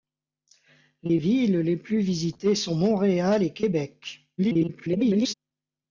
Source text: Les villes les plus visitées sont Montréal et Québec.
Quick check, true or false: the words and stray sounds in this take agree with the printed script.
false